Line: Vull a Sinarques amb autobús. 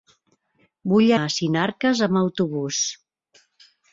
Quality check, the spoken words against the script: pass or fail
pass